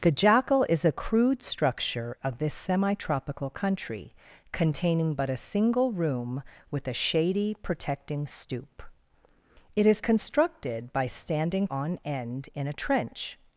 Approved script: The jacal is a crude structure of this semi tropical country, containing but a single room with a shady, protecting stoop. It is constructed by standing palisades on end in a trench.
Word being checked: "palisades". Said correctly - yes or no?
no